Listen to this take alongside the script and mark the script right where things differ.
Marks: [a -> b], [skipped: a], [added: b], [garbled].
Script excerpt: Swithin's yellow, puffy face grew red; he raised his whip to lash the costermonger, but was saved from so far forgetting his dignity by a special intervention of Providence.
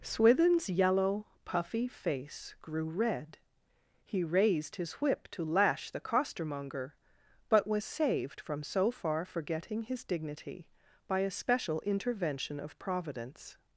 Swithin's yellow, puffy face grew red; he raised his whip to lash the costermonger, but was saved from so far forgetting his dignity by a special intervention of Providence.